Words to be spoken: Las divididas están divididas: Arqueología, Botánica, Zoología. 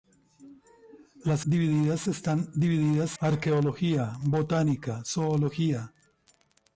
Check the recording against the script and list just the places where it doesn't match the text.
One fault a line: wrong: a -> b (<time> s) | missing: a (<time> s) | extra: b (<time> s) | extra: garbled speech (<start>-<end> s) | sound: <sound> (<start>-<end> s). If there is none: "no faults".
no faults